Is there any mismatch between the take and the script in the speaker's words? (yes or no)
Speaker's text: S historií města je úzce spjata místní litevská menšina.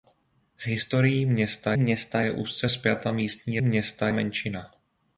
yes